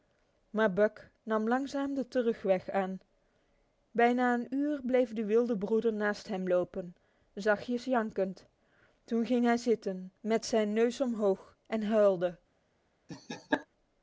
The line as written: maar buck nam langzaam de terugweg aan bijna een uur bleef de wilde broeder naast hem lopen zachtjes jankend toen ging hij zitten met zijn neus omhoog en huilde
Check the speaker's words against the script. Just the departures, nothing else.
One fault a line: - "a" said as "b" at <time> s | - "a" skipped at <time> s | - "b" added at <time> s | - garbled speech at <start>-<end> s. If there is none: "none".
none